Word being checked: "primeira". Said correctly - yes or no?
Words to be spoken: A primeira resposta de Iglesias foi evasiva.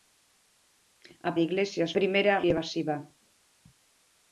no